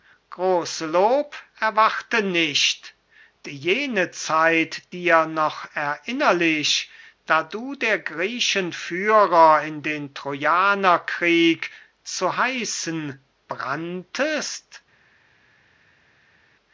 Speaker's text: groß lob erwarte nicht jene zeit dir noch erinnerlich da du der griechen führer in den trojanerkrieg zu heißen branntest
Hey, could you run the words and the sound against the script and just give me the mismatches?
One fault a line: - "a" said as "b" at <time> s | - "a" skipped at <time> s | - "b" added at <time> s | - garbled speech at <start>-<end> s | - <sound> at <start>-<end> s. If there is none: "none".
none